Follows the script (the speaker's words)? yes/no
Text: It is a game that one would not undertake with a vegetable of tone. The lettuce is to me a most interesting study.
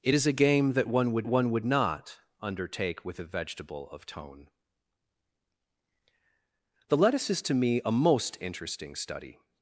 no